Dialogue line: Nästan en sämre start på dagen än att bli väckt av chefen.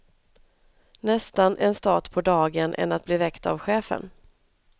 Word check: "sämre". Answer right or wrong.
wrong